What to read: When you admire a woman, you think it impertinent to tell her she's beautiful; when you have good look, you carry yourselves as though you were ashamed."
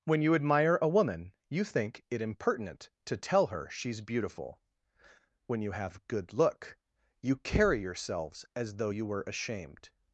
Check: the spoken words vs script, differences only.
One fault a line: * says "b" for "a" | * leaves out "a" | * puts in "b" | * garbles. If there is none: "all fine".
all fine